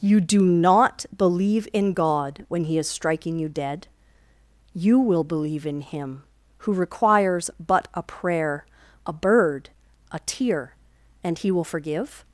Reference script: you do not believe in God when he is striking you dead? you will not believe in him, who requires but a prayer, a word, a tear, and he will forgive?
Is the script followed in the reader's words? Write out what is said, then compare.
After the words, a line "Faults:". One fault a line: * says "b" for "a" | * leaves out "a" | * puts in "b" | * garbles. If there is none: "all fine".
you do not believe in God when he is striking you dead? you will believe in him, who requires but a prayer, a bird, a tear, and he will forgive?
Faults:
* leaves out "not"
* says "bird" for "word"